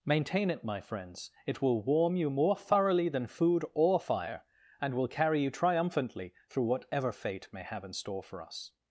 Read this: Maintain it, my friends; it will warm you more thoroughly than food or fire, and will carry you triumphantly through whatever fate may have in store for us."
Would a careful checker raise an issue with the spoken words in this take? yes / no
no